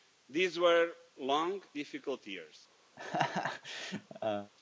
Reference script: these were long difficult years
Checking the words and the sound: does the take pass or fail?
fail